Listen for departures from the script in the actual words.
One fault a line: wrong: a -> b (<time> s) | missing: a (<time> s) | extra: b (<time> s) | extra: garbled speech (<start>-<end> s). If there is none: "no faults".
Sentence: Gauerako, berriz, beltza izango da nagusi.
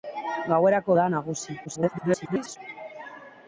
missing: berriz beltza izango (0.9 s)
extra: garbled speech (1.6-2.6 s)